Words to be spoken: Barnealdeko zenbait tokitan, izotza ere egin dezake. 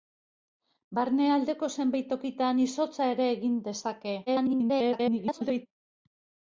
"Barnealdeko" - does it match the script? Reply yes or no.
yes